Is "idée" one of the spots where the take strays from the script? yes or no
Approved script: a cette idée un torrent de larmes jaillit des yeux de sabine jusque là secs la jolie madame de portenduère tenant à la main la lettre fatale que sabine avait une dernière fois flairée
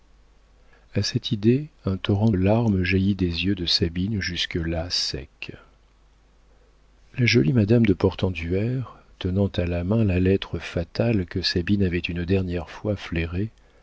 no